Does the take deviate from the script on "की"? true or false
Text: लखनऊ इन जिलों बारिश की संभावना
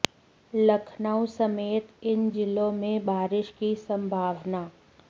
false